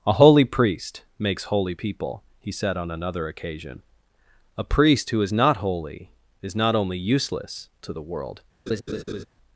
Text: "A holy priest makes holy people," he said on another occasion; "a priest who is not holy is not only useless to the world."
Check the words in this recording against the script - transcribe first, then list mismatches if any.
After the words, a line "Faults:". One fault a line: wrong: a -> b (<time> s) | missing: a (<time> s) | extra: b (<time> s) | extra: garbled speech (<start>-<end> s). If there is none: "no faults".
"A holy priest makes holy people," he said on another occasion; "a priest who is not holy is not only useless to the world."
Faults:
no faults